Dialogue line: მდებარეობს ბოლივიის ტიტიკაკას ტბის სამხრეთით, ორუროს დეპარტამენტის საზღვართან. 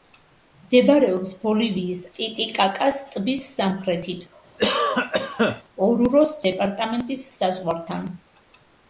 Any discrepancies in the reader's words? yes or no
no